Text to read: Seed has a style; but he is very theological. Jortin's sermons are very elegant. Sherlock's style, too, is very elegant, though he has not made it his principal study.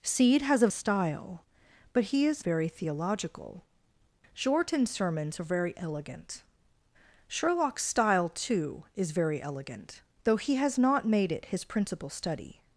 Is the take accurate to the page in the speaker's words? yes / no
yes